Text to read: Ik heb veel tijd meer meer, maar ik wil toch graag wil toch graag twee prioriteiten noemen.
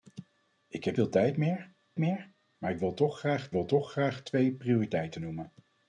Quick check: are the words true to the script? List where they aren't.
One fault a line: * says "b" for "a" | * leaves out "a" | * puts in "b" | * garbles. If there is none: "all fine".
all fine